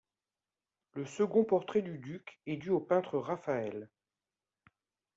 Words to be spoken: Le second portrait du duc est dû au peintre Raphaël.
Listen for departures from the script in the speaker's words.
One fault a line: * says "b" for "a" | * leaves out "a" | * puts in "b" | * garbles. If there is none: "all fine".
all fine